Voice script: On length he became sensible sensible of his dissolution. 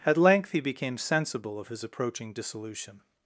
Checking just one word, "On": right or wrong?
wrong